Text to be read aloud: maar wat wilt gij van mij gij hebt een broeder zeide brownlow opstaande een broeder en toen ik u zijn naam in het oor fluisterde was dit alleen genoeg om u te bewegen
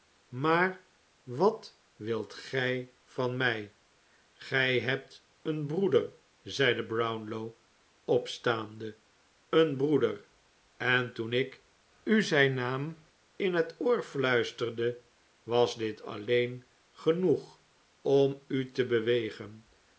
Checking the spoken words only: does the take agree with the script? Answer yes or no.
yes